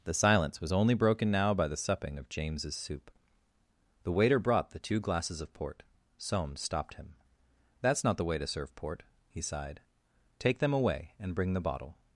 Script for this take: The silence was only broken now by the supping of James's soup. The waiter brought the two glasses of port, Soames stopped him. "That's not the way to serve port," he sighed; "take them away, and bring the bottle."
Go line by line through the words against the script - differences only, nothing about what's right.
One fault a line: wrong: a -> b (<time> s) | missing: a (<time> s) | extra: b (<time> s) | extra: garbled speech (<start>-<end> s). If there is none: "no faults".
no faults